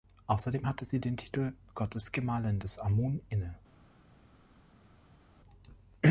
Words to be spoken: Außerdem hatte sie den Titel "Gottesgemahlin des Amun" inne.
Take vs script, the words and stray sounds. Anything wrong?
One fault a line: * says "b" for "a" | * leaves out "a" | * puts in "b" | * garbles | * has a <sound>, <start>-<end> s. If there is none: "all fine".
all fine